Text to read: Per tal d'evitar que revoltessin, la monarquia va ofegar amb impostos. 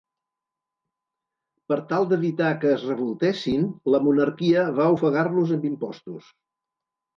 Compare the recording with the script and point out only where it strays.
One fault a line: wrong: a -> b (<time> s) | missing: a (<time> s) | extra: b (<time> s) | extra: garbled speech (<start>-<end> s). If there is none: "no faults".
extra: es (2.8 s)
extra: los (5.4 s)